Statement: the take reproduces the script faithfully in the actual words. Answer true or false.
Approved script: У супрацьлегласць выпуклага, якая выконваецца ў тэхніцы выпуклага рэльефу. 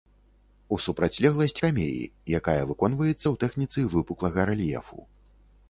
false